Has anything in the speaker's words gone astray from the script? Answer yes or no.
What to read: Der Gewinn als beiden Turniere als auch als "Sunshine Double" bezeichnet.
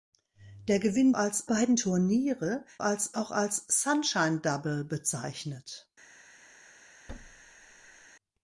no